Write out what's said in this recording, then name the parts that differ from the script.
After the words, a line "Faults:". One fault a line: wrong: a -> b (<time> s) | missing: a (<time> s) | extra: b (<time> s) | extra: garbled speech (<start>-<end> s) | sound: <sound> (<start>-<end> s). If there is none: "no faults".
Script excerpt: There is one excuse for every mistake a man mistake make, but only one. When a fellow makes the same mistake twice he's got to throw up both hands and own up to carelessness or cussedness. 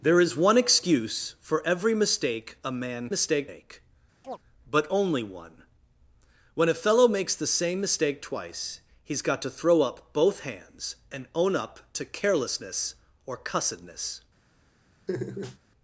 There is one excuse for every mistake a man mistake make, but only one. When a fellow makes the same mistake twice he's got to throw up both hands and own up to carelessness or cussedness.
Faults:
sound: chirp (4.2-4.4 s)
sound: laugh (15.1-15.6 s)